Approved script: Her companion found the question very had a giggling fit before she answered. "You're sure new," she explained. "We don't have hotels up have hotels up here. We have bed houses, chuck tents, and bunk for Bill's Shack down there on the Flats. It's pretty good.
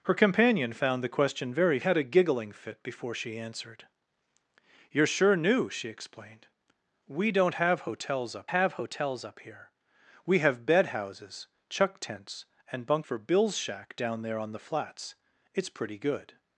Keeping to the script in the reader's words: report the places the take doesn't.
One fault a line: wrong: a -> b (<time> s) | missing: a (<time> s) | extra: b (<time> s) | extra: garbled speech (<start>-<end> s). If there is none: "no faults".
no faults